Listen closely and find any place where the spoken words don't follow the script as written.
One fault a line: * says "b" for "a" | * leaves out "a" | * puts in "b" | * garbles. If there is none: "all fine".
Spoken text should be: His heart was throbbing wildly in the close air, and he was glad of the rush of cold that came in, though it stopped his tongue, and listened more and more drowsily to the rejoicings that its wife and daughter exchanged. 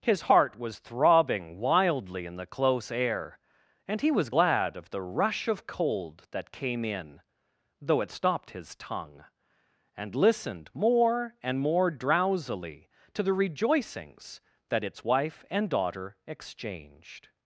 all fine